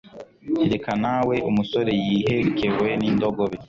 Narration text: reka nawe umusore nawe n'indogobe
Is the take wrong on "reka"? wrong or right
right